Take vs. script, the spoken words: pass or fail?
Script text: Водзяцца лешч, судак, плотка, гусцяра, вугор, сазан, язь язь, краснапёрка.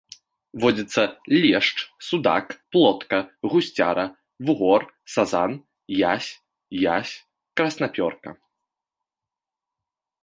pass